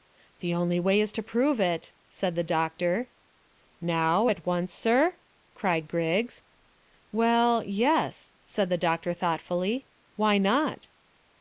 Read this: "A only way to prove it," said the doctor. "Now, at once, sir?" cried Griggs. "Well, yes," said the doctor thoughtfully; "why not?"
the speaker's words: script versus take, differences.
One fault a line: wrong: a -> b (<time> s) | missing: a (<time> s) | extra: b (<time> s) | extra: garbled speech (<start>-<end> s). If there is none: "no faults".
wrong: A -> The (0.4 s)
extra: is (1.0 s)